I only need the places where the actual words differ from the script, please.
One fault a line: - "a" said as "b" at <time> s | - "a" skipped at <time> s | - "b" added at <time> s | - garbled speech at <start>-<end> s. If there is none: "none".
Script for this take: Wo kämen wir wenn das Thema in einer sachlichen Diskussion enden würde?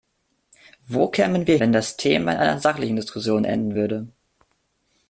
none